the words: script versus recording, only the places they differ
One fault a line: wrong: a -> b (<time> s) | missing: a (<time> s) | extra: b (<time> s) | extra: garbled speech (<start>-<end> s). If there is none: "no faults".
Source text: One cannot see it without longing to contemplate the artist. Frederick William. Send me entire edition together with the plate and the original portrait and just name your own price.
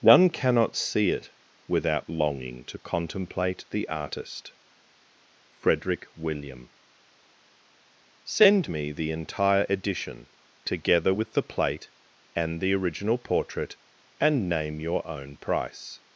extra: the (8.9 s)
missing: just (14.5 s)